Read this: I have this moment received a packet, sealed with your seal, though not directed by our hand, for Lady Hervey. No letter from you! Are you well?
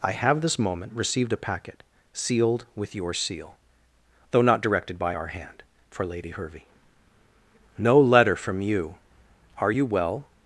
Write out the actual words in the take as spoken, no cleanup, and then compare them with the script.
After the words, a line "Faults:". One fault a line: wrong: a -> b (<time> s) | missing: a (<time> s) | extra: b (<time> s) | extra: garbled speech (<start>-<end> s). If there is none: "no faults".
I have this moment received a packet, sealed with your seal, though not directed by our hand, for Lady Hervey. No letter from you! Are you well?
Faults:
no faults